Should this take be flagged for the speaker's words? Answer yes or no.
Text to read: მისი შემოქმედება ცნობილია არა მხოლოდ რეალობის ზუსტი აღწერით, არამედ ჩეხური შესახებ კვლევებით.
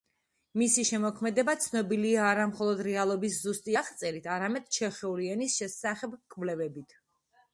yes